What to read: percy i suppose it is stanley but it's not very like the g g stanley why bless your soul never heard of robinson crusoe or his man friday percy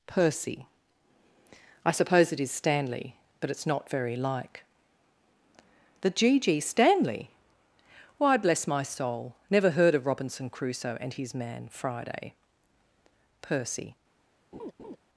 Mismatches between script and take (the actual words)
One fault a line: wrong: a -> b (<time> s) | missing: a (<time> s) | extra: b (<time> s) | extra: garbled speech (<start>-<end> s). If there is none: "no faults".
wrong: your -> my (8.7 s)
wrong: or -> and (11.0 s)